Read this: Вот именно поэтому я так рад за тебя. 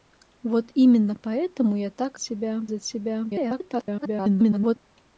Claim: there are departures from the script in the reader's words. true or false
true